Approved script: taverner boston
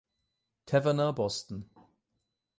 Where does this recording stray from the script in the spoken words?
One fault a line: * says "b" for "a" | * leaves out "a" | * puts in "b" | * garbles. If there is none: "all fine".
all fine